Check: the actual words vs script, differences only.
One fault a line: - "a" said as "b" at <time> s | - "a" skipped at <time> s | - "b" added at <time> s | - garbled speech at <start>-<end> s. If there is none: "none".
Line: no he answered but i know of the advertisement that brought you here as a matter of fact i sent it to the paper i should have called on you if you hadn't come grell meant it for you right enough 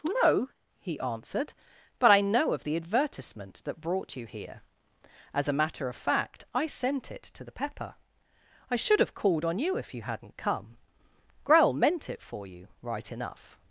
- "paper" said as "pepper" at 7.5 s